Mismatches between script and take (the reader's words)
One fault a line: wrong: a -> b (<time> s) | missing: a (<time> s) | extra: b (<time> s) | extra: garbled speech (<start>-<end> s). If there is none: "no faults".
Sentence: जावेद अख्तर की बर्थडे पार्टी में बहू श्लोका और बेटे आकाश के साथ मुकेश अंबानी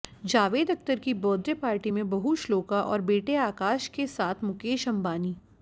no faults